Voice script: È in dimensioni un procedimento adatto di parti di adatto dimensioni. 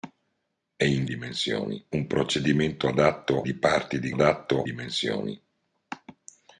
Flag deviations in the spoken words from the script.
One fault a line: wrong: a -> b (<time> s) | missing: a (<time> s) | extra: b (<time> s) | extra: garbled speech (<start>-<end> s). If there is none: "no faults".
no faults